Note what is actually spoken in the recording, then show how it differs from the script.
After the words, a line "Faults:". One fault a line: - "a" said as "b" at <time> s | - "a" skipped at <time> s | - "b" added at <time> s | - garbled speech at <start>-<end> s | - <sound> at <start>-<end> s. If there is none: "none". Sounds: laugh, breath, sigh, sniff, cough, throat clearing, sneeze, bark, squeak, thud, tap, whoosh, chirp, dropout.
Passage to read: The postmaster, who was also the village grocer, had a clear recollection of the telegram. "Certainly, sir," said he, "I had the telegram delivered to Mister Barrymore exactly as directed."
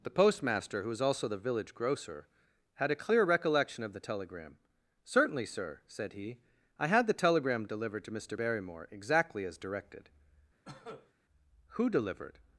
The postmaster, who was also the village grocer, had a clear recollection of the telegram. "Certainly, sir," said he, "I had the telegram delivered to Mister Barrymore exactly as directed." "Who delivered
Faults:
- cough at 10.7-11.1 s
- "Who delivered" added at 11.7 s